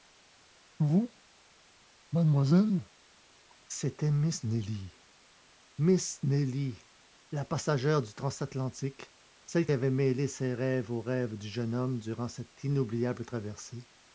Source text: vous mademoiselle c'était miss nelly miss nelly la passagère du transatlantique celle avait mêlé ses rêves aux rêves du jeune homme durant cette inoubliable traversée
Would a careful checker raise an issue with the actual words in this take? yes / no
no